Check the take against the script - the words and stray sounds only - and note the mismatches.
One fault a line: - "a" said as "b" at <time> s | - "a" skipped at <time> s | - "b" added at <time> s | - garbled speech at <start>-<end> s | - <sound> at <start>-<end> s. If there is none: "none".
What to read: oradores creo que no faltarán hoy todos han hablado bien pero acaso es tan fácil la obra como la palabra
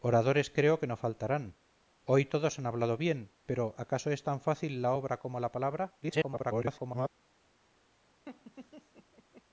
- garbled speech at 6.0-7.1 s
- laugh at 8.3-9.4 s